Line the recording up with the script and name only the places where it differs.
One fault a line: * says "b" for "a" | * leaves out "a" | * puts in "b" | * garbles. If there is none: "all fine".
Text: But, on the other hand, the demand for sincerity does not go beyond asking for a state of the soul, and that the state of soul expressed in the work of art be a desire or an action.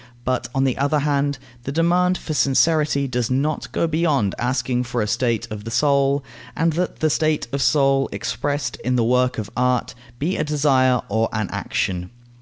all fine